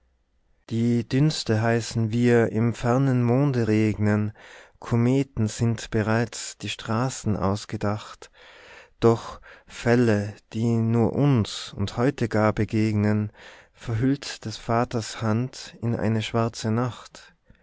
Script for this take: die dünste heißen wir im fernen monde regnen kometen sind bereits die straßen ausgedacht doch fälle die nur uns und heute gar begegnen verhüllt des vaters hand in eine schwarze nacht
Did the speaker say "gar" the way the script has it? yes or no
yes